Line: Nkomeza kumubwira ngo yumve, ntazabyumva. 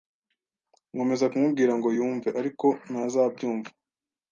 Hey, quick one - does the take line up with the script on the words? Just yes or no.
no